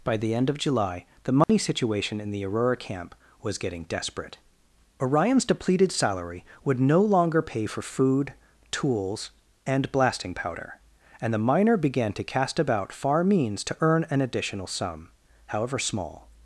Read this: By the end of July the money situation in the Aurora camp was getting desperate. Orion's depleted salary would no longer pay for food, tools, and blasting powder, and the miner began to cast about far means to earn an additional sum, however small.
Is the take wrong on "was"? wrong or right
right